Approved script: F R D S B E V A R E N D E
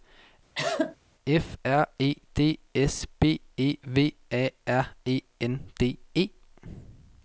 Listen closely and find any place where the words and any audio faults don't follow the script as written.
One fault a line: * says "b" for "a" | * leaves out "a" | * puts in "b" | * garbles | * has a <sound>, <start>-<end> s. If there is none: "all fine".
* has a cough, 0.5-1.0 s
* puts in "E"